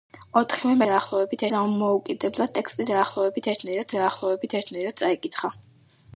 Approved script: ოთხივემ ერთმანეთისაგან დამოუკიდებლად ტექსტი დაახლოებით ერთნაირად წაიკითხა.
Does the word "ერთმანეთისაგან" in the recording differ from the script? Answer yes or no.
yes